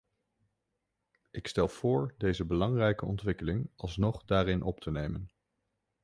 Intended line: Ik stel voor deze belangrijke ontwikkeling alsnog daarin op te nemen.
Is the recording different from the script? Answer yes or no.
no